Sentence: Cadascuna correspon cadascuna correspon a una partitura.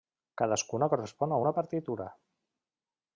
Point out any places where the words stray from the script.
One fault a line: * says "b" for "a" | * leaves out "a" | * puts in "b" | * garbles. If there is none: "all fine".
* leaves out "cadascuna correspon"